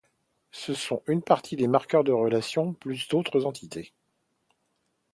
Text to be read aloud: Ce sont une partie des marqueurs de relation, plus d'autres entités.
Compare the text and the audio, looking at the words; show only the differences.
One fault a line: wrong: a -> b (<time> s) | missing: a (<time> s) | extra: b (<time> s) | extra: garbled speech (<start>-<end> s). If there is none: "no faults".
no faults